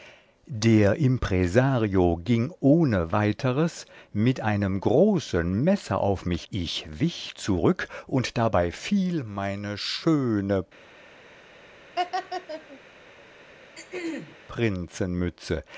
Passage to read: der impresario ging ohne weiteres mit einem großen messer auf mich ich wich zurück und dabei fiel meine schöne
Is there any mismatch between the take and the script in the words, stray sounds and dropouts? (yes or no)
yes